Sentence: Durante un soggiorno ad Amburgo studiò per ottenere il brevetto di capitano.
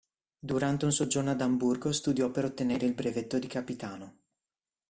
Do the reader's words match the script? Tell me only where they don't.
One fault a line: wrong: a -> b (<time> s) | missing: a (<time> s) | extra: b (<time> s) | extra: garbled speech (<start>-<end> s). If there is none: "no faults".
no faults